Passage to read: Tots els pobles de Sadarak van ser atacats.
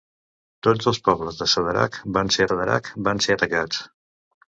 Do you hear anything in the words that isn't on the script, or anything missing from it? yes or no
yes